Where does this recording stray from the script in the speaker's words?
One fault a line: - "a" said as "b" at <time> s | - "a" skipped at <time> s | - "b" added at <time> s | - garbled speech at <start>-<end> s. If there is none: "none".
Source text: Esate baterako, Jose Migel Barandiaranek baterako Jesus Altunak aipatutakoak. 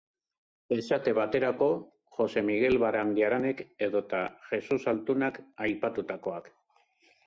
- "baterako" said as "edota" at 3.9 s